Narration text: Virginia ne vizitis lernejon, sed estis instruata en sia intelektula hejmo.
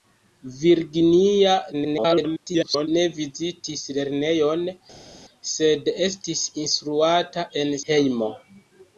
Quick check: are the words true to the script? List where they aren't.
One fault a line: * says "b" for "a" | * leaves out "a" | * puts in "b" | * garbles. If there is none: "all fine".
* garbles
* leaves out "sia intelektula"